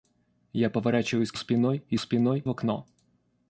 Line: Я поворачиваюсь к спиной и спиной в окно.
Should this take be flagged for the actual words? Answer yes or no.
no